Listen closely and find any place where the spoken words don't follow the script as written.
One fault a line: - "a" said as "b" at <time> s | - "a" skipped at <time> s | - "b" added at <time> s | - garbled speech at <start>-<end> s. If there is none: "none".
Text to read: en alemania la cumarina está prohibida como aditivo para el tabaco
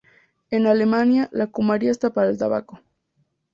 - "prohibida como aditivo" skipped at 2.1 s